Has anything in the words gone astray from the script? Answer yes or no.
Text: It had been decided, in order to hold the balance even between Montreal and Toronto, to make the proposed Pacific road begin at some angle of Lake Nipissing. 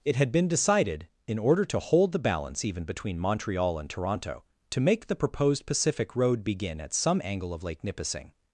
no